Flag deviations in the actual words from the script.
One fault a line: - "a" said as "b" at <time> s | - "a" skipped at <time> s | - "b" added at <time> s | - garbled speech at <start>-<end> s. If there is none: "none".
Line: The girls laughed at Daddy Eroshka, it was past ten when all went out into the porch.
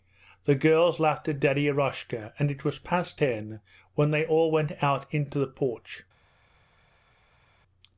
- "and" added at 2.4 s
- "they" added at 4.1 s